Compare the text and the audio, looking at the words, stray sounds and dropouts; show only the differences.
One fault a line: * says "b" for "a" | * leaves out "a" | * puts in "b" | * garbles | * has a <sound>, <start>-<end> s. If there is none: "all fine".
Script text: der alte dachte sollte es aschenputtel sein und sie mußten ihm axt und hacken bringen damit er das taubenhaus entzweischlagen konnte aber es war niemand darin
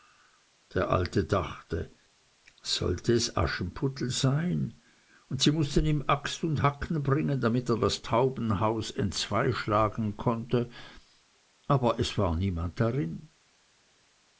all fine